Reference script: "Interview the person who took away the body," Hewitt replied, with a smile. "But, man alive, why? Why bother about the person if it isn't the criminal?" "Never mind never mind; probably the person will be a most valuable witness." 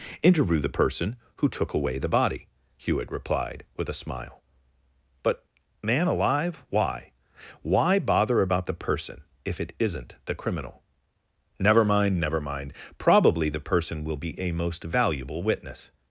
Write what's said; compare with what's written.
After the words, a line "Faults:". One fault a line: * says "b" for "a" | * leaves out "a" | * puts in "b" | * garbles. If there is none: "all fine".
"Interview the person who took away the body," Hewitt replied, with a smile. "But, man alive, why? Why bother about the person if it isn't the criminal?" "Never mind never mind; probably the person will be a most valuable witness."
Faults:
all fine